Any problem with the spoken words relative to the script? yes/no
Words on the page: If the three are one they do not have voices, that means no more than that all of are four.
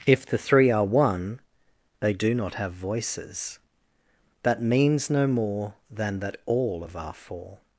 no